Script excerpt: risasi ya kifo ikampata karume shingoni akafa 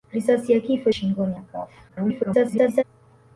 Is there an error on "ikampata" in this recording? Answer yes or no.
yes